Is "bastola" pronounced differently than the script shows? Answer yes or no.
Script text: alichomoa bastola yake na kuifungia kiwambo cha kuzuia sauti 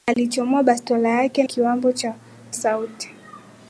no